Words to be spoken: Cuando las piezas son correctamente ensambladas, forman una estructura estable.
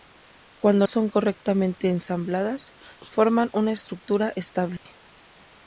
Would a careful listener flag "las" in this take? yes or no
yes